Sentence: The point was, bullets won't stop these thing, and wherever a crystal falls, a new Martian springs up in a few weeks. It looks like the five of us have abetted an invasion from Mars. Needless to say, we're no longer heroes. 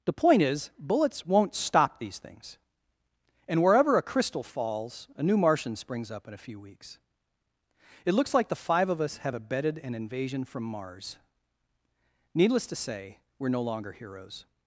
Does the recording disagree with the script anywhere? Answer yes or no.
yes